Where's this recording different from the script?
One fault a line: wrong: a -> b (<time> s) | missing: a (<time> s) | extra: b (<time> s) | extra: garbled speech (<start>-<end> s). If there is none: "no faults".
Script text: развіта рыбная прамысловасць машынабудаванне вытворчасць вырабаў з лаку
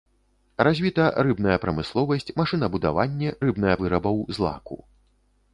wrong: вытворчасць -> рыбная (3.5 s)